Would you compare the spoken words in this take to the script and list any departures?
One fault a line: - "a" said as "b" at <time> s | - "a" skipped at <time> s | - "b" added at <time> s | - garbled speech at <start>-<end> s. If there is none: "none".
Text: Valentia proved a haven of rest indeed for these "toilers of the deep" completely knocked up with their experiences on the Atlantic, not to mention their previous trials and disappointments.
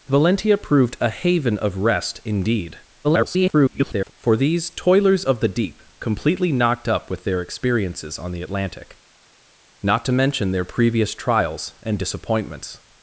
- garbled speech at 3.0-4.1 s